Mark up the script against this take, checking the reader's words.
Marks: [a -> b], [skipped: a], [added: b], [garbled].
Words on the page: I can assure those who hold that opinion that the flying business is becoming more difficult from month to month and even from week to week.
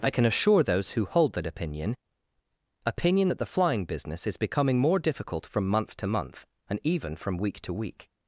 I can assure those who hold that opinion [added: opinion] that the flying business is becoming more difficult from month to month and even from week to week.